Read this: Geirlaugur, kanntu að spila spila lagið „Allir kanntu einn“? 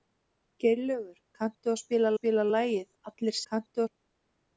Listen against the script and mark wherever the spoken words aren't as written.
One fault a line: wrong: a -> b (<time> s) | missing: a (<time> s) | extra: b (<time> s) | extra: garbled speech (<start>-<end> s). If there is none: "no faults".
no faults